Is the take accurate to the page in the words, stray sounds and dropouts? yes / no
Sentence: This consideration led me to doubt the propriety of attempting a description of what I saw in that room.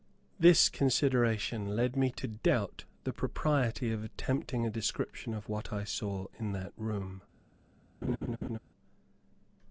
no